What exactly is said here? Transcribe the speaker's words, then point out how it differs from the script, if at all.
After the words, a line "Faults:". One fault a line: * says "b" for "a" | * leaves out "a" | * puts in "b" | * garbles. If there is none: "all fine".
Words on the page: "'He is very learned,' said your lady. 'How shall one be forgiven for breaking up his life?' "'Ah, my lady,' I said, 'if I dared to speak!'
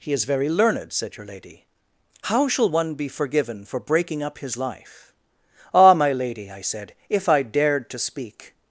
"'He is very learned,' said your lady. 'How shall one be forgiven for breaking up his life?' "'Ah, my lady,' I said, 'if I dared to speak!'
Faults:
all fine